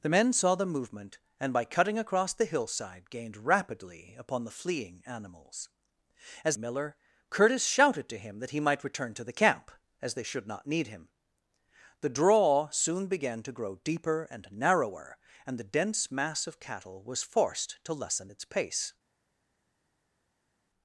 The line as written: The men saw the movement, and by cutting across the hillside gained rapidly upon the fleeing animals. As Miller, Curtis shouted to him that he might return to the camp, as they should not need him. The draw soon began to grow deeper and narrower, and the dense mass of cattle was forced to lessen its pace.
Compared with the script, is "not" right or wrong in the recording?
right